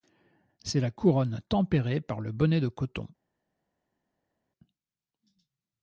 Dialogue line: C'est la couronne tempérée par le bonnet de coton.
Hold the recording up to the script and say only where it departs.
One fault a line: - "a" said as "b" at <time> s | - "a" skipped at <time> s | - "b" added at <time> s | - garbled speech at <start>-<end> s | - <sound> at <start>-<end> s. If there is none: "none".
none